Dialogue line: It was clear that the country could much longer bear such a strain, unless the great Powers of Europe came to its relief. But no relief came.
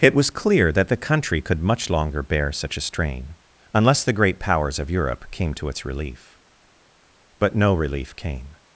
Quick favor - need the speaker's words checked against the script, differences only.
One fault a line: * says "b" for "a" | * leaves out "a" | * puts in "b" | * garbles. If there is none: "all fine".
all fine